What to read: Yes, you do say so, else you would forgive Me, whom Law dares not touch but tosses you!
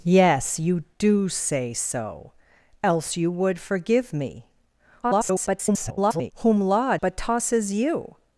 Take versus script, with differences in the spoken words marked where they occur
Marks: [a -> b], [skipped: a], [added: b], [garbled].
Yes, you do say so, else you would forgive Me, [garbled] whom Law [skipped: dares not touch] but tosses you!